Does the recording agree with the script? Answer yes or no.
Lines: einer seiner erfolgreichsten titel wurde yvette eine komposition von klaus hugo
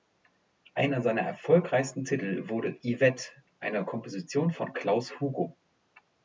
yes